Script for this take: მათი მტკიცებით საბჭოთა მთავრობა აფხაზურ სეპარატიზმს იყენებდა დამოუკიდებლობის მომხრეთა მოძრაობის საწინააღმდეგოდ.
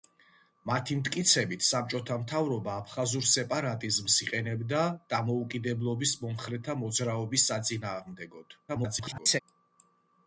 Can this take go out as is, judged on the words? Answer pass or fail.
fail